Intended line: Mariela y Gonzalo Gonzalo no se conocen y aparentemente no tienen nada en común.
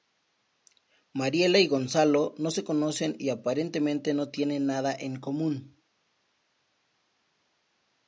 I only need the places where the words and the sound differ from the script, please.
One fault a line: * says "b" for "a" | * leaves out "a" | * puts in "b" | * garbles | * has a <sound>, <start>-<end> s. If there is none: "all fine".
* leaves out "Gonzalo"